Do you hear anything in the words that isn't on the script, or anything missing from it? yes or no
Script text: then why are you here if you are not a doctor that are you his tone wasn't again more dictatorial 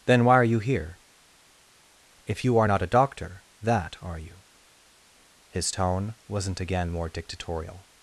no